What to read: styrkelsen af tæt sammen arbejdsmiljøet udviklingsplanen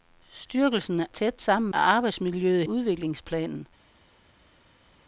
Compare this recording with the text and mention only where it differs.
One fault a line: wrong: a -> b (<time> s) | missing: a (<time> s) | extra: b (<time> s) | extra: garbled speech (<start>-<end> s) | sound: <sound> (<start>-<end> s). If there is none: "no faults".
no faults